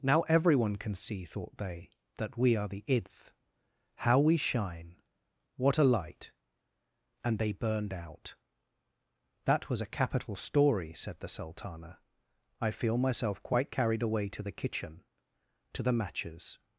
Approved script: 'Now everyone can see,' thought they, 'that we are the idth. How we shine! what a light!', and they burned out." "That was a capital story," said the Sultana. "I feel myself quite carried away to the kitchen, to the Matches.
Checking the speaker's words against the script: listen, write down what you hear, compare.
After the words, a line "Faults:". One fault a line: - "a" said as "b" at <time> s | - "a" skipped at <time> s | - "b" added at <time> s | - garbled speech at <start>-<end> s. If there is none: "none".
'Now everyone can see,' thought they, 'that we are the idth. How we shine! what a light!', and they burned out." "That was a capital story," said the Sultana. "I feel myself quite carried away to the kitchen, to the Matches.
Faults:
none